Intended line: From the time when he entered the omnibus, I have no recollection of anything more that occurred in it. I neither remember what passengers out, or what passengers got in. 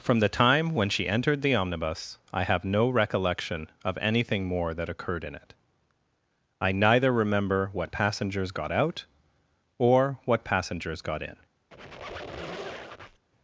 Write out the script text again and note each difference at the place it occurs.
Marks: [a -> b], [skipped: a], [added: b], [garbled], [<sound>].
From the time when [he -> she] entered the omnibus, I have no recollection of anything more that occurred in it. I neither remember what passengers [added: got] out, or what passengers got in. [squeak]